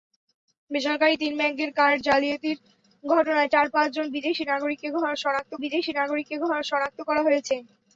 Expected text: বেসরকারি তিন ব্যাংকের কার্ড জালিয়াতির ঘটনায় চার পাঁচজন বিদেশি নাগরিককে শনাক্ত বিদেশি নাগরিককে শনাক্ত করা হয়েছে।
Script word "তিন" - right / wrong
right